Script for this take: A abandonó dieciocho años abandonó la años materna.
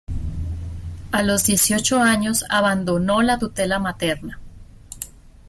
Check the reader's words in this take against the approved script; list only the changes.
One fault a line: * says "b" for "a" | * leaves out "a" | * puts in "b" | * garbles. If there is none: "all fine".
* says "los" for "abandonó"
* says "tutela" for "años"